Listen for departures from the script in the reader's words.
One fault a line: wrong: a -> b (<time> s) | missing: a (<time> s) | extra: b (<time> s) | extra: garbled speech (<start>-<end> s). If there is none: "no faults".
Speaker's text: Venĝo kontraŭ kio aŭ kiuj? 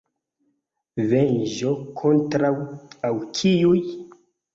missing: kio (2.5 s)